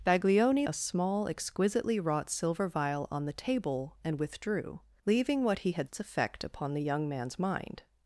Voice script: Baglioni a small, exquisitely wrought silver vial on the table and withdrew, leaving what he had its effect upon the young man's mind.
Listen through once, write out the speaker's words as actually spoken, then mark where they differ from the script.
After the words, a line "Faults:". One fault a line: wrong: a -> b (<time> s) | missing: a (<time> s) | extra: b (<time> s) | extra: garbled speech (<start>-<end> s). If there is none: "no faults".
Baglioni a small, exquisitely wrought silver vial on the table and withdrew, leaving what he had its effect upon the young man's mind.
Faults:
no faults